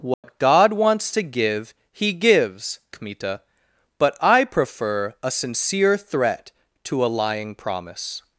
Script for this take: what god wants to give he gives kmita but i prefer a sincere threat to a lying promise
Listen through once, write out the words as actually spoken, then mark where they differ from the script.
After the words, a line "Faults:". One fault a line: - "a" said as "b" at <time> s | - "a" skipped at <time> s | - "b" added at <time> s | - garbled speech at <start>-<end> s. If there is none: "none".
what god wants to give he gives kmita but i prefer a sincere threat to a lying promise
Faults:
none